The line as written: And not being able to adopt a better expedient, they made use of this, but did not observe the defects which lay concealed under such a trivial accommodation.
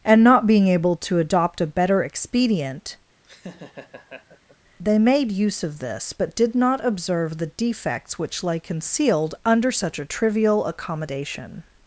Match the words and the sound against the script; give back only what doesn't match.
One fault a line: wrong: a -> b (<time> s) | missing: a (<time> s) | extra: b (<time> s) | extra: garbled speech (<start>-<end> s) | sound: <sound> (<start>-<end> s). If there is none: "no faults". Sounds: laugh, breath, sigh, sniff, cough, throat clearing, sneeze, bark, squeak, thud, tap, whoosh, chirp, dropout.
sound: laugh (3.2-4.6 s)